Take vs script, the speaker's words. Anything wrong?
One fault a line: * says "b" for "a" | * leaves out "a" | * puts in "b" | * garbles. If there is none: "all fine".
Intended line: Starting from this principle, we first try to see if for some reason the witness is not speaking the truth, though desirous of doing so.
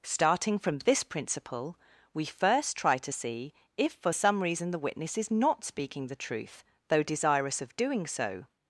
all fine